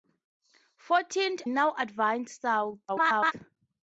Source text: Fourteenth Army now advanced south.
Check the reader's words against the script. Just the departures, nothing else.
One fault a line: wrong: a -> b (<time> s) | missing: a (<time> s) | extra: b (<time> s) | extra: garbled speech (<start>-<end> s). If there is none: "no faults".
missing: Army (1.4 s)
extra: garbled speech (2.9-3.3 s)